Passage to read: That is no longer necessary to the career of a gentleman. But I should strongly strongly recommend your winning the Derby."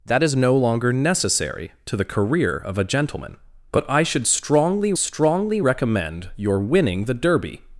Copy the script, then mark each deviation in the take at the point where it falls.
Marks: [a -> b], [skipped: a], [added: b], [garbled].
That is no longer necessary to the career of a gentleman. But I should strongly strongly recommend your winning the Derby."